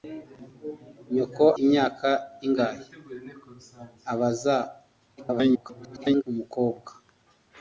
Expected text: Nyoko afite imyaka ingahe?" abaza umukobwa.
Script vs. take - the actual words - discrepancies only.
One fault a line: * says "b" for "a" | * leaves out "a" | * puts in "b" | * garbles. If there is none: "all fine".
* leaves out "afite"
* garbles